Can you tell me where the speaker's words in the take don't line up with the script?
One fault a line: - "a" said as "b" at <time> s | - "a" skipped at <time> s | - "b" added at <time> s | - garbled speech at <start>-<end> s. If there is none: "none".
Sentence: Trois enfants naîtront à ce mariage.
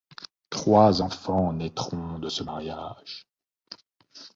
- "à" said as "de" at 2.2 s